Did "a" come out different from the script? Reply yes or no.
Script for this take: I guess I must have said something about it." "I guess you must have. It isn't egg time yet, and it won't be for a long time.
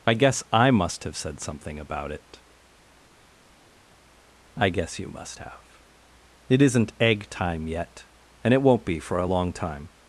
no